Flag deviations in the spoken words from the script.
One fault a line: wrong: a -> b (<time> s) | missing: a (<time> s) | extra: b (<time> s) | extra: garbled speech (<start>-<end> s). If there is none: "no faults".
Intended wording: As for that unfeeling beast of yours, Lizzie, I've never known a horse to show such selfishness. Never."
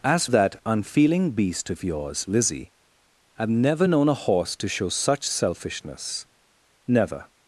missing: for (0.2 s)